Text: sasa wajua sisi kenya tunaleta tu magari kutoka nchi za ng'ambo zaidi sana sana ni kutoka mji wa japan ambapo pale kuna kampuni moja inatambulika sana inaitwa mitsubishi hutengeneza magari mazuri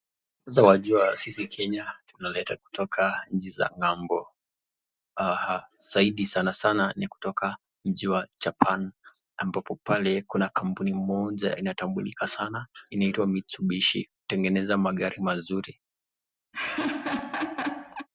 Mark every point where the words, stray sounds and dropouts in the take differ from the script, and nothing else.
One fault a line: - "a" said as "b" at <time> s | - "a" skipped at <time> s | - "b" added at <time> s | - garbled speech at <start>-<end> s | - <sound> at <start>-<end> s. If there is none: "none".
- "tu magari" skipped at 2.5 s
- laugh at 16.5-18.1 s